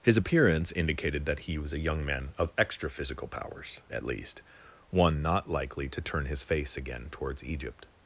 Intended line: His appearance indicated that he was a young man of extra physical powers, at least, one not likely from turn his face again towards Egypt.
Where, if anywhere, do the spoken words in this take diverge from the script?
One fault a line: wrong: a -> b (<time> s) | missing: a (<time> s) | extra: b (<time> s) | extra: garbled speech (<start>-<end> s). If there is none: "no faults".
wrong: from -> to (5.9 s)